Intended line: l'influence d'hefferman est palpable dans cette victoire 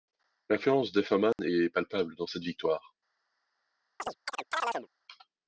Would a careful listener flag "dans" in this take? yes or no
no